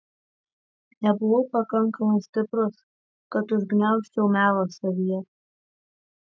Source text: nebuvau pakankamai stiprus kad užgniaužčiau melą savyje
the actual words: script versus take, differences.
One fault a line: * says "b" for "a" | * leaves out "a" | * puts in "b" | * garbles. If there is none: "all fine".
all fine